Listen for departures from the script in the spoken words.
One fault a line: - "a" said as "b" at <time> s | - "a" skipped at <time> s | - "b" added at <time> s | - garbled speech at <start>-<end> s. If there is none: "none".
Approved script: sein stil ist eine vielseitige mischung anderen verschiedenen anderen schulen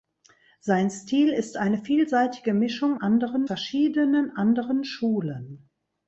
none